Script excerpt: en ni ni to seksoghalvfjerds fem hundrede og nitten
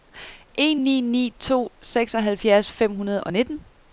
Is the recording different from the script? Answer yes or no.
no